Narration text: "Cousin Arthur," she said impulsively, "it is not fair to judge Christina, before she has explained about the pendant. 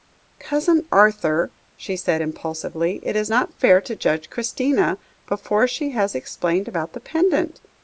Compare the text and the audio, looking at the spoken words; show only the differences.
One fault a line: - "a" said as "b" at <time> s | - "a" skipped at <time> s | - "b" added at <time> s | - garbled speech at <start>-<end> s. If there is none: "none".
none